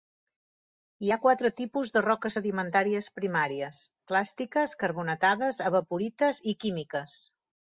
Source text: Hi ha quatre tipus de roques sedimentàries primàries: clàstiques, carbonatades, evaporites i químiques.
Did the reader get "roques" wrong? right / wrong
right